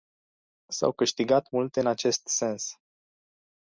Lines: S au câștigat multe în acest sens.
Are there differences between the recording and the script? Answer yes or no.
no